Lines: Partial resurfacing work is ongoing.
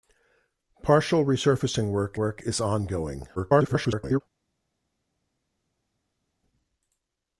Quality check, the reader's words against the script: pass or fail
fail